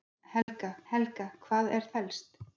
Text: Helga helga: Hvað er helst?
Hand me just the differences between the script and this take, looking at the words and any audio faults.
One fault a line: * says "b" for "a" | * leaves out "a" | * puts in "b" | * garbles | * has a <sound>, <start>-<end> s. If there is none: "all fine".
* has a dropout, 0.4-0.5 s